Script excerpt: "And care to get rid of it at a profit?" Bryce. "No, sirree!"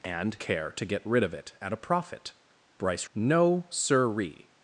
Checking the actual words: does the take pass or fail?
pass